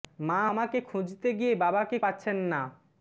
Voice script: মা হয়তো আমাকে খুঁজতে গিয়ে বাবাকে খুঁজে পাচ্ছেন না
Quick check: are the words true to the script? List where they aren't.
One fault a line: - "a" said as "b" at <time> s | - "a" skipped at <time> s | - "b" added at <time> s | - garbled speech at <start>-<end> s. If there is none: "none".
- "হয়তো" skipped at 0.4 s
- "খুঁজে" skipped at 2.0 s